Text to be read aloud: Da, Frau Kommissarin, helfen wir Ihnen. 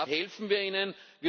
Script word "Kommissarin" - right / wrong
wrong